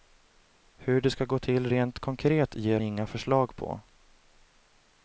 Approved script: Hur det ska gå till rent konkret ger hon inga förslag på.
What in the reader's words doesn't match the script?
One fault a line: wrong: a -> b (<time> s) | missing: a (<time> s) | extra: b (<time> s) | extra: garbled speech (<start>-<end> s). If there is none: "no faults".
missing: hon (2.8 s)